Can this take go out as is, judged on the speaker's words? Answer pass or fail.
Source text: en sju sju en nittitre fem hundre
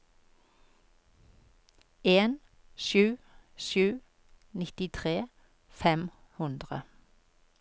fail